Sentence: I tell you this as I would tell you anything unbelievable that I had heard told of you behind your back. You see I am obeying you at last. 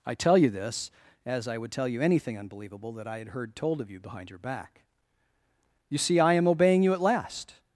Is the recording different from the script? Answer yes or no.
no